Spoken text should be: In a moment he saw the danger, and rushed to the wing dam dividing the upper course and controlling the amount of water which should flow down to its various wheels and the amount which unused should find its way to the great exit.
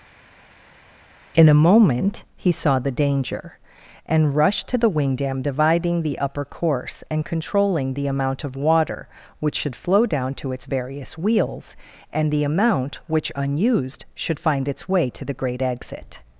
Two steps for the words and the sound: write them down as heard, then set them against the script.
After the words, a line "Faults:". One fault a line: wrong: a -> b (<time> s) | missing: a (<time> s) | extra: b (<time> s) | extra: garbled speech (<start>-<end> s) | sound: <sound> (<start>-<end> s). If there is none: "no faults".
In a moment he saw the danger, and rushed to the wing dam dividing the upper course and controlling the amount of water which should flow down to its various wheels and the amount which unused should find its way to the great exit.
Faults:
no faults